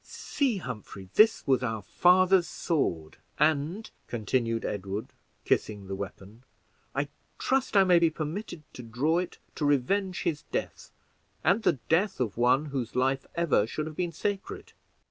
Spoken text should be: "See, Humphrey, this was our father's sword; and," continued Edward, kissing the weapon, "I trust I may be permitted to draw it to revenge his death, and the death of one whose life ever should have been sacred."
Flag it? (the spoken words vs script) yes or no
no